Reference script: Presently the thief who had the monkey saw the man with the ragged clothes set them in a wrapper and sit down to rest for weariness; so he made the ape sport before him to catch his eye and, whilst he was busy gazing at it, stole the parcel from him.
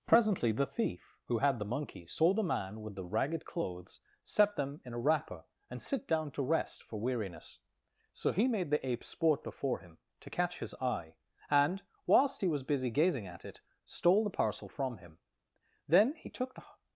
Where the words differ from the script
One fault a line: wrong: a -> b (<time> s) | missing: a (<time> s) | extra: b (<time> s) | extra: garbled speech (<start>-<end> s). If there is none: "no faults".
extra: Then he took the (15.8 s)